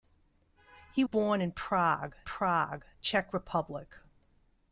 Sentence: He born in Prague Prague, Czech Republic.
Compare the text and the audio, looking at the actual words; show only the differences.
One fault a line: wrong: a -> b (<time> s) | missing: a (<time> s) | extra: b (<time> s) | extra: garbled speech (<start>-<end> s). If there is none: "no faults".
no faults